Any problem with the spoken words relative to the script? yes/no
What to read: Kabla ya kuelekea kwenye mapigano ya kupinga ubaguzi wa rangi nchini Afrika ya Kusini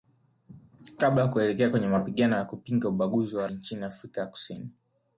yes